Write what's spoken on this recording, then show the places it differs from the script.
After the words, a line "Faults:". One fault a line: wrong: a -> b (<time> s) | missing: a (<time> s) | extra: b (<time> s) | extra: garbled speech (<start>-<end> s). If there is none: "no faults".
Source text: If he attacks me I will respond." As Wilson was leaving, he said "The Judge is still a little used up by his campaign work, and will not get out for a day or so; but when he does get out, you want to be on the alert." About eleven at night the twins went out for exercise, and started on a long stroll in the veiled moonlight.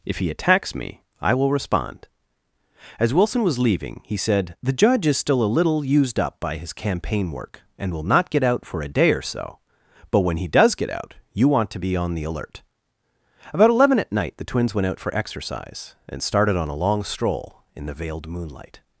If he attacks me I will respond." As Wilson was leaving, he said "The Judge is still a little used up by his campaign work, and will not get out for a day or so; but when he does get out, you want to be on the alert." About eleven at night the twins went out for exercise, and started on a long stroll in the veiled moonlight.
Faults:
no faults